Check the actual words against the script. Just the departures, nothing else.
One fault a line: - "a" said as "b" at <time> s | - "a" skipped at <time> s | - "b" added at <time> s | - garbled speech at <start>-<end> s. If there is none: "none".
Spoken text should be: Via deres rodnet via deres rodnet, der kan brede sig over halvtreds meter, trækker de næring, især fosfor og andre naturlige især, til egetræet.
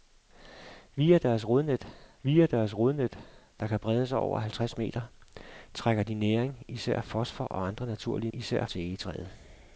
none